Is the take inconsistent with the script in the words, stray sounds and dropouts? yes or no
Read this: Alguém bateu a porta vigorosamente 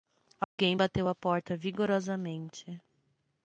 yes